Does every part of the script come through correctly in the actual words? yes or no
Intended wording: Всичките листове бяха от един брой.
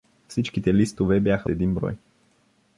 no